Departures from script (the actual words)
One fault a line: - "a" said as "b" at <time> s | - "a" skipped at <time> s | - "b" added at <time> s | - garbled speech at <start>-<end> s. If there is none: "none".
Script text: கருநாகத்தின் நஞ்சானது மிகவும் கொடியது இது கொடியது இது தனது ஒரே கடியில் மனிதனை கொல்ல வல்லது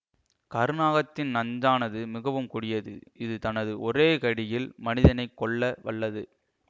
- "கொடியது இது" skipped at 3.4 s